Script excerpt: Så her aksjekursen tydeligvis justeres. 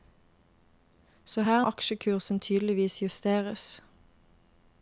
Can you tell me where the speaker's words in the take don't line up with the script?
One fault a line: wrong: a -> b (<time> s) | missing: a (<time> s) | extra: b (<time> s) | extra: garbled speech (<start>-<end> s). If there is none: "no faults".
no faults